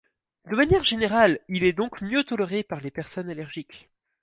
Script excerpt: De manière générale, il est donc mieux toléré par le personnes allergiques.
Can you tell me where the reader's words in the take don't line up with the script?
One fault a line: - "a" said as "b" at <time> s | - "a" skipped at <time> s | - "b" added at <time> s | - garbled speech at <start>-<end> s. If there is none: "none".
- "le" said as "les" at 2.8 s